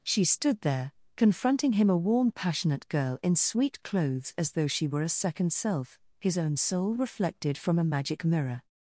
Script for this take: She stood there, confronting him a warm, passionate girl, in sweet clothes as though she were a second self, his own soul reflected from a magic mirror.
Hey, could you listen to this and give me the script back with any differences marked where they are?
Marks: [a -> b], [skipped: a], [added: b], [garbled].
She stood there, confronting him a warm, passionate girl, in sweet clothes as though she were a second self, his own soul reflected from a magic mirror.